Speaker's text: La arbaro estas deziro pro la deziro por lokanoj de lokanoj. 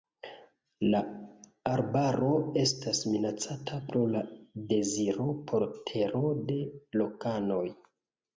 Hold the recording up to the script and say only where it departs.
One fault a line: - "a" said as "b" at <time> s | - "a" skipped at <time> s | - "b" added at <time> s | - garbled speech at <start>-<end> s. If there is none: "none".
- "deziro" said as "minacata" at 3.1 s
- "lokanoj" said as "tero" at 5.9 s